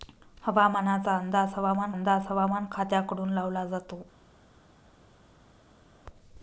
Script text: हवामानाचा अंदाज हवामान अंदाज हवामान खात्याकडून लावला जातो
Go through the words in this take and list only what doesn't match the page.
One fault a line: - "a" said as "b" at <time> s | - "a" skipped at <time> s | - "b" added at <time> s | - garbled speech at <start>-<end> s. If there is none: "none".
none